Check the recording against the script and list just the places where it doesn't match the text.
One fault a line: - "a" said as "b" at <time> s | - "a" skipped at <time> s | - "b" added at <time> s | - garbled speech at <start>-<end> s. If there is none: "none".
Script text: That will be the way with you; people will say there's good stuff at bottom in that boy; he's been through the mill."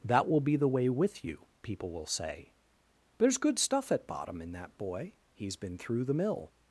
none